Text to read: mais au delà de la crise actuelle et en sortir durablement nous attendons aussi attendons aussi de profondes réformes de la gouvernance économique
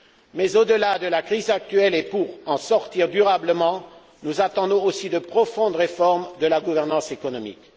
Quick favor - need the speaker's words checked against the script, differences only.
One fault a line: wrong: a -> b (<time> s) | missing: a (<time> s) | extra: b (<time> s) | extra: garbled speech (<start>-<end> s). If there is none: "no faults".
extra: pour (2.0 s)
missing: attendons aussi (5.1 s)